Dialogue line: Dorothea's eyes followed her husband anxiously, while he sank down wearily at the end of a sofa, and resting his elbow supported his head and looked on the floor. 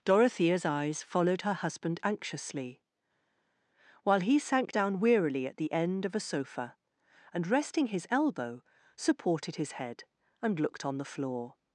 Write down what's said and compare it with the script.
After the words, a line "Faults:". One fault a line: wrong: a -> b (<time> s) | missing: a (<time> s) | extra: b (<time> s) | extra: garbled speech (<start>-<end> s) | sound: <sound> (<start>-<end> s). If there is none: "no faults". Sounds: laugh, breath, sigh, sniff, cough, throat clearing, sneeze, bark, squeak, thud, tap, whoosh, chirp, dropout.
Dorothea's eyes followed her husband anxiously, while he sank down wearily at the end of a sofa, and resting his elbow supported his head and looked on the floor.
Faults:
no faults